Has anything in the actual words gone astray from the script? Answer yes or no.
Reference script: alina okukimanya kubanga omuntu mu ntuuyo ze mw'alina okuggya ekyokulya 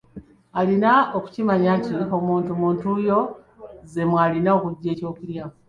yes